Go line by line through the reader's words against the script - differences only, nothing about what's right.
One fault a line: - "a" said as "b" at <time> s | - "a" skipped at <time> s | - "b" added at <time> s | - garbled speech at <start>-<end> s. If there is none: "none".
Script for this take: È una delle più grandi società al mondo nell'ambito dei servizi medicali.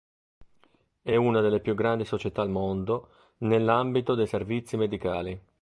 none